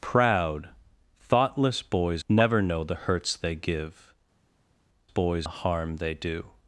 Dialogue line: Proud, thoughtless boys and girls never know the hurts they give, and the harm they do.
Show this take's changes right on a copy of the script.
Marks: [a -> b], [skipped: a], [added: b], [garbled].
Proud, thoughtless boys [skipped: and girls] never know the hurts they give, [and -> boys] the harm they do.